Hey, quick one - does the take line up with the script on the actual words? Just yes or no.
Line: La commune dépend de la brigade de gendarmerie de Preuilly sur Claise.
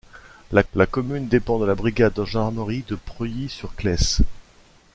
no